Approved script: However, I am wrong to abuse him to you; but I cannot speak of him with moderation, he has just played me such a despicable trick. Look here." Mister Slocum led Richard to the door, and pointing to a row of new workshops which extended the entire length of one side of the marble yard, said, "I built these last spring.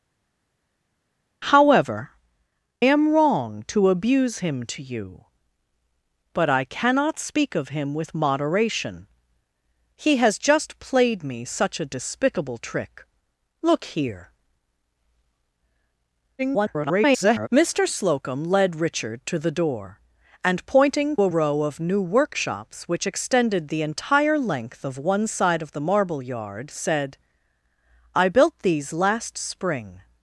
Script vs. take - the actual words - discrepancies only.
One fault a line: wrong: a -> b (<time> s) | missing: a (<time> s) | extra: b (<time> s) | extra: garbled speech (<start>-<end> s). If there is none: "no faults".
missing: I (2.1 s)
extra: garbled speech (16.4-17.5 s)
missing: to (21.1 s)